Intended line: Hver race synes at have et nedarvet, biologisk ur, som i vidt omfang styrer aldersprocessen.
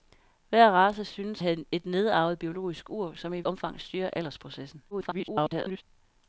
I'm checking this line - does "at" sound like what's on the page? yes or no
no